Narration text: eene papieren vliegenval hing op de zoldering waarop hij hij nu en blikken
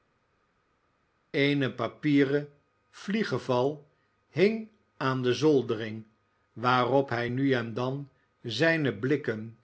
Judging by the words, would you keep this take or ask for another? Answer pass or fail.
fail